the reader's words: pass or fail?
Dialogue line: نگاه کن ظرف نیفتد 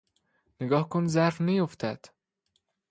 pass